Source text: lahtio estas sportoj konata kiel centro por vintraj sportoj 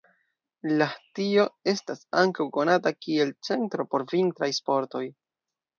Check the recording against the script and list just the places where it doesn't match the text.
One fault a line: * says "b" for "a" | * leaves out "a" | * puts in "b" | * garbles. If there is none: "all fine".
* says "ankaŭ" for "sportoj"